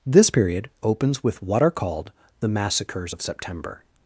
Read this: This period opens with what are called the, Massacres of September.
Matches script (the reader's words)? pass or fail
pass